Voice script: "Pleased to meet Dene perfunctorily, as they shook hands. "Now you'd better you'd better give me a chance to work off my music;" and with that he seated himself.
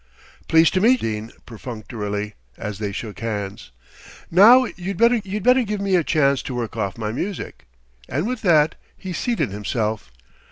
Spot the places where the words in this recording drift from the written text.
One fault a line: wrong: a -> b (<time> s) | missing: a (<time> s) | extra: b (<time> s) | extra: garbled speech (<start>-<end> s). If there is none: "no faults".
no faults